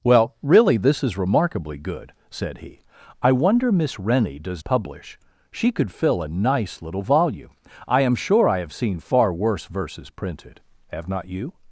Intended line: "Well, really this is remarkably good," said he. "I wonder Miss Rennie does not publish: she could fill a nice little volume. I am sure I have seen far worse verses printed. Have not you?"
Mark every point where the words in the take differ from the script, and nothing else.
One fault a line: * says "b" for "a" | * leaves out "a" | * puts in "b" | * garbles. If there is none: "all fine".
* leaves out "not"